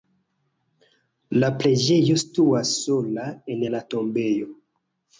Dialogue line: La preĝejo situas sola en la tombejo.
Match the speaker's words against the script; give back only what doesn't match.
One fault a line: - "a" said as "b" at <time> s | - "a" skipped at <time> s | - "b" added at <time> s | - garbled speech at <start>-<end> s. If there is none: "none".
none